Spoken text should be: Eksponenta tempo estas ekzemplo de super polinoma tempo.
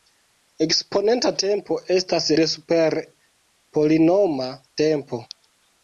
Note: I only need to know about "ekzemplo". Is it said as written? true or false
false